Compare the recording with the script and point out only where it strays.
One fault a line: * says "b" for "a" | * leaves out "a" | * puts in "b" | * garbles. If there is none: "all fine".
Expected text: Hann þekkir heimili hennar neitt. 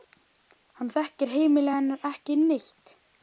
* puts in "ekki"